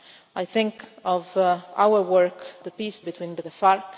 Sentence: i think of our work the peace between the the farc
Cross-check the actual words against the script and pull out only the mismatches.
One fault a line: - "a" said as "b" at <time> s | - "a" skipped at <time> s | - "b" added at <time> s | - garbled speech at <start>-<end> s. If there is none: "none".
none